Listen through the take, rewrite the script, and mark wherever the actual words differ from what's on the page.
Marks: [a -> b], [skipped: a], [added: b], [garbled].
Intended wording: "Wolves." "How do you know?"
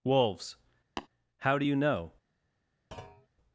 "Wolves." "How do you know?"